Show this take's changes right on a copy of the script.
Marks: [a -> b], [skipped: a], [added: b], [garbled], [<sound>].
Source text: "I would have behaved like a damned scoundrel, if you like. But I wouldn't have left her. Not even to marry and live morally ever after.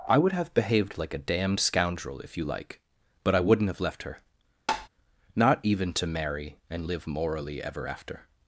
"I would have behaved like a damned scoundrel, if you like. But I wouldn't have left her. [tap] Not even to marry and live morally ever after.